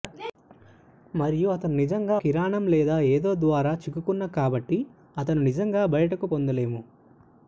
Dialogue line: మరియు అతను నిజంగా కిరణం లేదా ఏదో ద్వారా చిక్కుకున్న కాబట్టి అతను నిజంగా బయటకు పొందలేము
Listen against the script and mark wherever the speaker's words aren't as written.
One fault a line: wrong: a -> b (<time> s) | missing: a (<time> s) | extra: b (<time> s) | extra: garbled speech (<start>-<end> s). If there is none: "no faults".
no faults